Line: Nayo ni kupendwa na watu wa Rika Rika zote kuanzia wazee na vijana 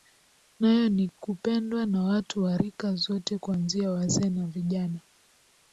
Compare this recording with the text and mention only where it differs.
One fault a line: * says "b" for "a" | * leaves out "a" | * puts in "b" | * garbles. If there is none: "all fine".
* leaves out "Rika"